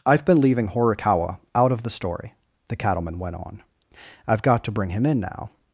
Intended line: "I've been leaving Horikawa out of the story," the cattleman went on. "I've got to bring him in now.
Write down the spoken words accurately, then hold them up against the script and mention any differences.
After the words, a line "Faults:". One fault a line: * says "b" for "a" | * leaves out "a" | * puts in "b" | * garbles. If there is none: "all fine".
"I've been leaving Horikawa out of the story," the cattleman went on. "I've got to bring him in now.
Faults:
all fine